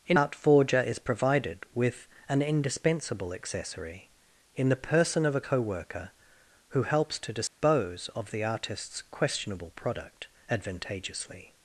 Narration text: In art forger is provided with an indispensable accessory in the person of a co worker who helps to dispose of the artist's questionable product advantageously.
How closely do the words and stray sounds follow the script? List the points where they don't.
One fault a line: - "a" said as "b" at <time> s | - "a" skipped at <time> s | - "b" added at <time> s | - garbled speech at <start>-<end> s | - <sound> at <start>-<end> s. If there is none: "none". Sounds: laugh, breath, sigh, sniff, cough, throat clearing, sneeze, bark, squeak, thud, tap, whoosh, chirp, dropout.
- dropout at 7.5-7.6 s